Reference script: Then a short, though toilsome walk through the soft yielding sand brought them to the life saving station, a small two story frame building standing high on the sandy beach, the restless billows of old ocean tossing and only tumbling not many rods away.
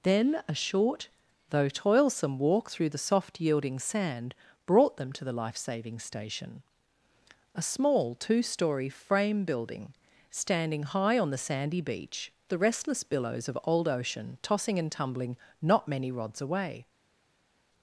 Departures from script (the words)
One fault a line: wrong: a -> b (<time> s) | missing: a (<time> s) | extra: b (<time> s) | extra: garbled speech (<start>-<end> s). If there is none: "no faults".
missing: only (14.9 s)